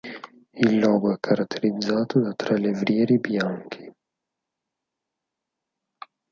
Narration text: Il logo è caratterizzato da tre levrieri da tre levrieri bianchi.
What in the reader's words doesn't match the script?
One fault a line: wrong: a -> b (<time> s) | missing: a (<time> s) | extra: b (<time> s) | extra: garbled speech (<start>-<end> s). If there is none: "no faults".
missing: da tre levrieri (3.2 s)